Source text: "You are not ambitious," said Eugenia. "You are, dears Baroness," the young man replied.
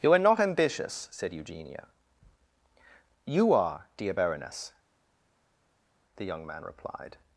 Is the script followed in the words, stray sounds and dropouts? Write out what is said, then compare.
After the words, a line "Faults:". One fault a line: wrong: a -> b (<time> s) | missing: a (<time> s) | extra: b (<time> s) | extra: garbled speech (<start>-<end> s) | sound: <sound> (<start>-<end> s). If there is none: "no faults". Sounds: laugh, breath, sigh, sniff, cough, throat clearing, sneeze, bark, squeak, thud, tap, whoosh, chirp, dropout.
"You are not ambitious," said Eugenia. "You are, dear Baroness," the young man replied.
Faults:
wrong: dears -> dear (4.0 s)